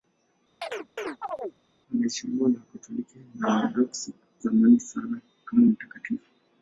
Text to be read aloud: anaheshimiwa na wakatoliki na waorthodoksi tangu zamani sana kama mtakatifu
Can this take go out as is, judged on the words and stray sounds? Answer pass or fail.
fail